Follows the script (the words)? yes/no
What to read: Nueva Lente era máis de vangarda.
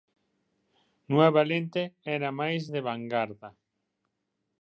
yes